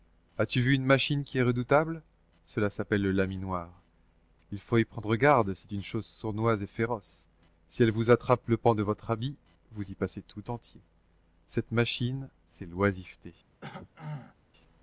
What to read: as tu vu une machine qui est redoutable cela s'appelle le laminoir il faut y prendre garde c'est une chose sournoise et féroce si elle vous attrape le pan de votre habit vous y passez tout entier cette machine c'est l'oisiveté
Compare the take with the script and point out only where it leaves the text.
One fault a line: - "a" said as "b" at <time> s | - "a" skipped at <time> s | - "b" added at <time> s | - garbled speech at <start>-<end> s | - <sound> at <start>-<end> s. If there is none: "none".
- throat clearing at 13.6-14.4 s